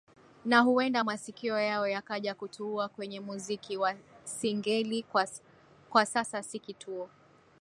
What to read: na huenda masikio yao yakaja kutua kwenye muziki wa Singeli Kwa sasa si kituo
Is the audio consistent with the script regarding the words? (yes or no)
yes